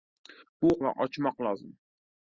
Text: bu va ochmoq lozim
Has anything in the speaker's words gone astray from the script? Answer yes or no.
no